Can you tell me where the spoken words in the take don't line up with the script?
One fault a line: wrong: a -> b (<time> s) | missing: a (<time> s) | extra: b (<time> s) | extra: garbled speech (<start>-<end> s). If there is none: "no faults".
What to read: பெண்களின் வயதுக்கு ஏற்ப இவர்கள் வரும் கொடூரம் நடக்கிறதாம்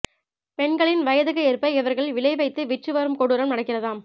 extra: விலை வைத்து விற்று (2.1 s)